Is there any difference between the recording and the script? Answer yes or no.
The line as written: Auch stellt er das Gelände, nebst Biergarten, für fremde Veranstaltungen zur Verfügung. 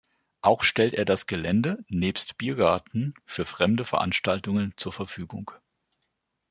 no